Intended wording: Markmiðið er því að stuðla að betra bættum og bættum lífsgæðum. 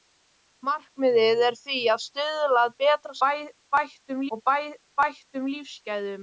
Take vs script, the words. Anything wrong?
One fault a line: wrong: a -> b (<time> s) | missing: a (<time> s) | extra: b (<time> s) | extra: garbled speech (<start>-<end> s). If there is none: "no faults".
no faults